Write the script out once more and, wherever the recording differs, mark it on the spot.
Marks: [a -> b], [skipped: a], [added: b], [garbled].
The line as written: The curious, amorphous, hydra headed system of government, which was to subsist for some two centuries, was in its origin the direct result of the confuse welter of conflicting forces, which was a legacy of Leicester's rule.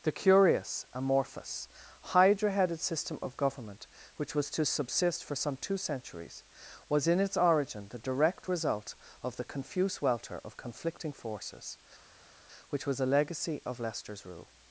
The curious, amorphous, hydra headed system of government, which was to subsist for some two centuries, was in its origin the direct result of the confuse welter of conflicting forces, which was a legacy of Leicester's rule.